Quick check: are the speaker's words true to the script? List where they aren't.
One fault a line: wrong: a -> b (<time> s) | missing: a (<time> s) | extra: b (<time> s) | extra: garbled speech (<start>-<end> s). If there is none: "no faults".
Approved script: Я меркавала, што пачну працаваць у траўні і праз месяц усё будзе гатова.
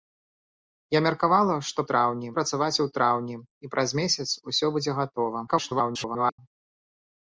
wrong: пачну -> траўні (1.9 s)
extra: garbled speech (5.5-6.4 s)